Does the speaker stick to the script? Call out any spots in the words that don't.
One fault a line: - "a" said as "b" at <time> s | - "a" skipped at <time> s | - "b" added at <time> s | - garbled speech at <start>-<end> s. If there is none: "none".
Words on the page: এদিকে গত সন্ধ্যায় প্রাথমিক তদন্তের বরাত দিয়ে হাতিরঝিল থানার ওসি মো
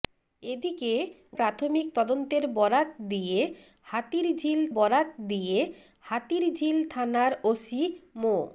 - "গত সন্ধ্যায় প্রাথমিক তদন্তের" said as "প্রাথমিক তদন্তের বরাত দিয়ে হাতিরঝিল" at 1.4 s